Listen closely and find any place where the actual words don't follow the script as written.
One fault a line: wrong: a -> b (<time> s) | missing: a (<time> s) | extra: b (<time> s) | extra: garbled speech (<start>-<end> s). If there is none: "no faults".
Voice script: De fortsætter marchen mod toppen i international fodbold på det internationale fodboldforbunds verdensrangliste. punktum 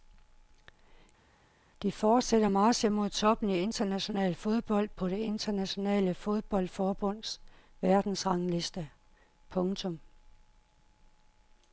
no faults